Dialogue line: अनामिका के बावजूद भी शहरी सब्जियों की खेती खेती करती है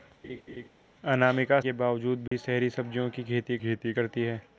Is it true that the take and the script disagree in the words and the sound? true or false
true